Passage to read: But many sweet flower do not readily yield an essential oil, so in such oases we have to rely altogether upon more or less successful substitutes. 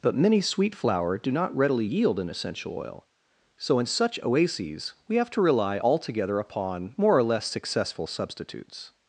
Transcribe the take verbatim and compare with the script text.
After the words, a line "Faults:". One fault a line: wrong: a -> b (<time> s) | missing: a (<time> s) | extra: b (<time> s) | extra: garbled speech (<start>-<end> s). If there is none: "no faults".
But many sweet flower do not readily yield an essential oil, so in such oases we have to rely altogether upon more or less successful substitutes.
Faults:
no faults